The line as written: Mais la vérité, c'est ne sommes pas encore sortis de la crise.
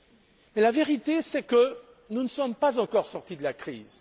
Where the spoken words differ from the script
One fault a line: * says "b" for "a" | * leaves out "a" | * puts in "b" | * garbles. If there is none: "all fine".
* puts in "que nous"